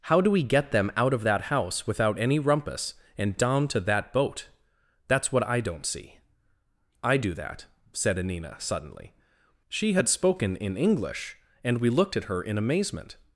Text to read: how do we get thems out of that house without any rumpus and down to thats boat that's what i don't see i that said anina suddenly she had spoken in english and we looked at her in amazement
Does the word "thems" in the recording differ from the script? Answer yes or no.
yes